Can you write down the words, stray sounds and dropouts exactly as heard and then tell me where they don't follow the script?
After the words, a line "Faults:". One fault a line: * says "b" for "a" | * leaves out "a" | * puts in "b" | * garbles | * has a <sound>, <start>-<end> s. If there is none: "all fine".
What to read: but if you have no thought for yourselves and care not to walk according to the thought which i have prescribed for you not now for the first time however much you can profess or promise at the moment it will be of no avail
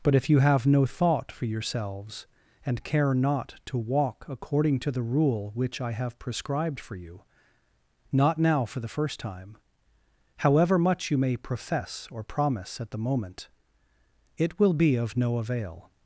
but if you have no thought for yourselves and care not to walk according to the rule which i have prescribed for you not now for the first time however much you may profess or promise at the moment it will be of no avail
Faults:
* says "rule" for "thought"
* says "may" for "can"